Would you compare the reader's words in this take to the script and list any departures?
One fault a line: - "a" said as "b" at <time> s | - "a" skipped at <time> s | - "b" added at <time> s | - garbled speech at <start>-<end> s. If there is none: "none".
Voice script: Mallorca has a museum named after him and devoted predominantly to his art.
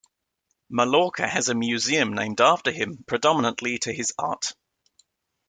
- "and devoted" skipped at 3.0 s